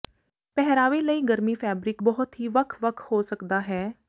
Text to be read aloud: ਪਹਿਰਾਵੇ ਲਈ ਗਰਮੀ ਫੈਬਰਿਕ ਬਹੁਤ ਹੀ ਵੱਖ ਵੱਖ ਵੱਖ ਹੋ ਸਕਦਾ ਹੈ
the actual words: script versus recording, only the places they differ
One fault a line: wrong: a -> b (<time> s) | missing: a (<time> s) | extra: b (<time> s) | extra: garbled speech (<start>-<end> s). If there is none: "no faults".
missing: ਵੱਖ (3.0 s)